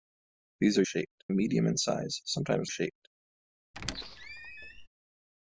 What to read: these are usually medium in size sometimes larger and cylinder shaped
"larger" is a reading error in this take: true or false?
true